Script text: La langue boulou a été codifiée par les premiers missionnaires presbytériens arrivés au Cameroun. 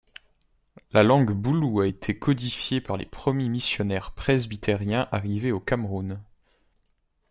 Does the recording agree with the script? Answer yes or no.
yes